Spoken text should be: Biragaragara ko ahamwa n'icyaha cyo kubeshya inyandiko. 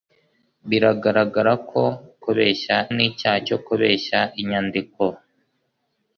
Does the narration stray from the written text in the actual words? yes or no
yes